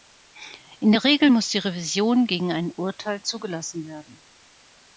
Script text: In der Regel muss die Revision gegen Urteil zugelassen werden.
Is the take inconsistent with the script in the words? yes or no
yes